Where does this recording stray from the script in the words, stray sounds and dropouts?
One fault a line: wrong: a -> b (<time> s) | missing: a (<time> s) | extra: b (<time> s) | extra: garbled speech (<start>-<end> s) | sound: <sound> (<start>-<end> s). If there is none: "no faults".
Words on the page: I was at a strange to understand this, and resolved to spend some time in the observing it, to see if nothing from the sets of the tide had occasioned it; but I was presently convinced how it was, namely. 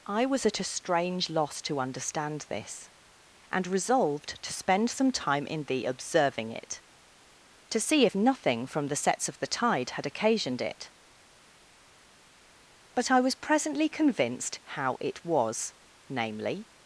extra: loss (1.3 s)